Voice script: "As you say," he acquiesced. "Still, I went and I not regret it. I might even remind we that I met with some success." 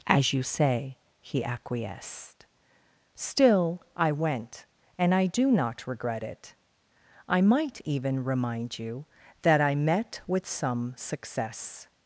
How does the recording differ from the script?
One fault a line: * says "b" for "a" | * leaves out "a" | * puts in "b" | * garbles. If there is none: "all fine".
* puts in "do"
* says "you" for "we"